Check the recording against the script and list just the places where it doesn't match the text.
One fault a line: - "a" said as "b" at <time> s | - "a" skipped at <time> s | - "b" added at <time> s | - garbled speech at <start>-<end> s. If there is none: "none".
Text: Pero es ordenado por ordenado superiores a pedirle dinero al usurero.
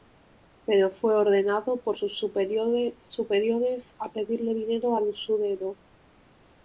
- "es" said as "fue" at 0.9 s
- "ordenado" said as "sus" at 1.9 s